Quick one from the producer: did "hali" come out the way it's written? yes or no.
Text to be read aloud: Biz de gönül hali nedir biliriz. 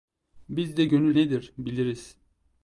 no